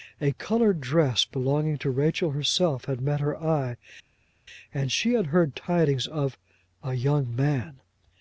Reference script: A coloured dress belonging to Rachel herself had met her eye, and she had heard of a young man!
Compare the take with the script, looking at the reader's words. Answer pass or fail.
fail